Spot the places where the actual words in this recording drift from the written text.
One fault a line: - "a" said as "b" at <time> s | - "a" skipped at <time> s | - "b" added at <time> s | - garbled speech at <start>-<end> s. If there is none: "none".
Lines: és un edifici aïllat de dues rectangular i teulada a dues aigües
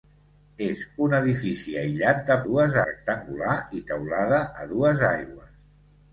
none